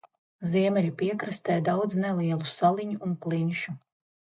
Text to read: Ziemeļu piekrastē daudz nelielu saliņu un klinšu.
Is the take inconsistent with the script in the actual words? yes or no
no